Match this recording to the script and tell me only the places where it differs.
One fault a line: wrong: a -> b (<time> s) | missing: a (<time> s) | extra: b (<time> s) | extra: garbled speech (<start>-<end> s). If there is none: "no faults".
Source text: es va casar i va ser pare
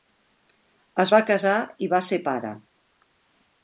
no faults